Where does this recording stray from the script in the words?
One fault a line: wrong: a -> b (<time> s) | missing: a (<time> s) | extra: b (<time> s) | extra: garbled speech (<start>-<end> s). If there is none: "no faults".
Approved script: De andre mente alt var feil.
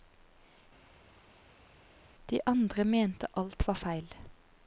no faults